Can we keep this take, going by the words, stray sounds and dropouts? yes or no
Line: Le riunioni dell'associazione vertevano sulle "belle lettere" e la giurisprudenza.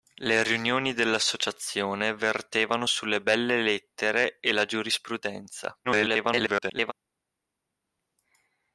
no